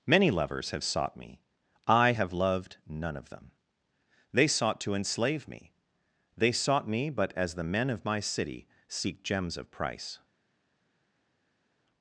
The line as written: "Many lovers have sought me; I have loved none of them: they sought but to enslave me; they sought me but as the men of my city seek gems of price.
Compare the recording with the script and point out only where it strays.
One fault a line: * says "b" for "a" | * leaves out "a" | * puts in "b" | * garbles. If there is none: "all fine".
* leaves out "but"